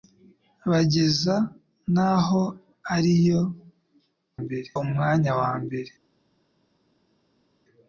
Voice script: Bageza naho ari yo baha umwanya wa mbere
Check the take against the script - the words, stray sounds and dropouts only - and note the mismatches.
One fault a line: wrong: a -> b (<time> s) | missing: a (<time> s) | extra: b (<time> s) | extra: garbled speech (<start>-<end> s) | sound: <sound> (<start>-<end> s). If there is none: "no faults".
wrong: baha -> mbere (4.4 s)